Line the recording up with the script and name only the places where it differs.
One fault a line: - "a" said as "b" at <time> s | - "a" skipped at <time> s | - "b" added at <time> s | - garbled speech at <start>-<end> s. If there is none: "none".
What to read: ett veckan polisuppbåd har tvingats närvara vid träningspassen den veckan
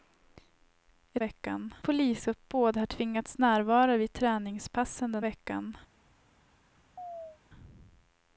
none